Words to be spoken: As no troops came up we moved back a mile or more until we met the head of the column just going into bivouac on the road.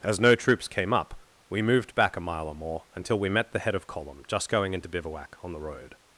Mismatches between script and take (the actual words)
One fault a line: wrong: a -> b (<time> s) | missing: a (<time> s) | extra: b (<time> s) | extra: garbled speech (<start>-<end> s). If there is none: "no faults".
missing: the (3.9 s)